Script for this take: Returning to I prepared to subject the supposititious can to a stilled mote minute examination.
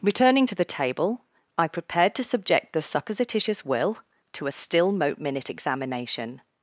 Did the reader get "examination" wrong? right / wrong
right